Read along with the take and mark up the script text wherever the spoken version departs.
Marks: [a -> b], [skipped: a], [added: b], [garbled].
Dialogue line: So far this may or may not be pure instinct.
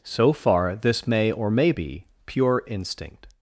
So far this may or may [skipped: not] be pure instinct.